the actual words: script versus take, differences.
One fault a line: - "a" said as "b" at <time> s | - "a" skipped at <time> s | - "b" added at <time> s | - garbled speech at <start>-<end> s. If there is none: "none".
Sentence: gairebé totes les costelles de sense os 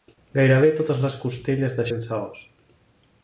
none